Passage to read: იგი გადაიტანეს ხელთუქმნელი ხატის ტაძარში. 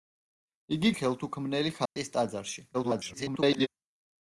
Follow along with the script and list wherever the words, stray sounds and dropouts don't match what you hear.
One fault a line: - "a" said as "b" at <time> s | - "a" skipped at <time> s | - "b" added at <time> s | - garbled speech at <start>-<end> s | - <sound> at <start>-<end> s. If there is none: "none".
- "გადაიტანეს" skipped at 0.9 s
- dropout at 1.9-2.0 s
- garbled speech at 2.7-3.7 s